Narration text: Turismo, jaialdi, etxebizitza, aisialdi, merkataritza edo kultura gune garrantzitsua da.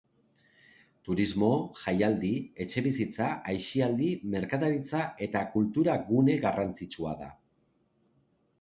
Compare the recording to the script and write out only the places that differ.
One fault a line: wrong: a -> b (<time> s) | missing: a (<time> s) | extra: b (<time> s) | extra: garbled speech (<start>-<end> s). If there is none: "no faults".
wrong: edo -> eta (5.3 s)